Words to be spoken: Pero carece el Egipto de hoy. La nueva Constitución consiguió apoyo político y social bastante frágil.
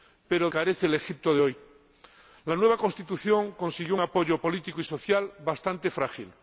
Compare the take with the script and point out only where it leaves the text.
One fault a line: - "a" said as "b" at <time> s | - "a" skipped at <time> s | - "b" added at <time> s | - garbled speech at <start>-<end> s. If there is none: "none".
none